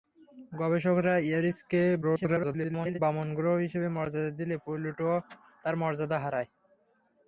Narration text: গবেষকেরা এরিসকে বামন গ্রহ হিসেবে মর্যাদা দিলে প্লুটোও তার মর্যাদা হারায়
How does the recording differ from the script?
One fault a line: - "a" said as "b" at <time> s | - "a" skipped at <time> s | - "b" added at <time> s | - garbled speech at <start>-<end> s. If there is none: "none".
- garbled speech at 2.0-3.0 s